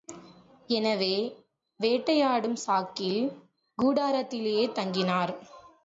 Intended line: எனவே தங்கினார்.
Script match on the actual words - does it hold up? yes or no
no